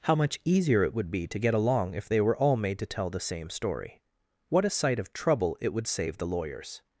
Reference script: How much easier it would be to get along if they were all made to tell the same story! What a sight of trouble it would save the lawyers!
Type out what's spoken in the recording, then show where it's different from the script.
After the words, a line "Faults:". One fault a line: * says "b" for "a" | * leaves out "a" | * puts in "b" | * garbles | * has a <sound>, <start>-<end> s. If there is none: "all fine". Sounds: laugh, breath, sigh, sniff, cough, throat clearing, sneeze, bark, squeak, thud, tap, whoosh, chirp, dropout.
How much easier it would be to get along if they were all made to tell the same story! What a sight of trouble it would save the lawyers!
Faults:
all fine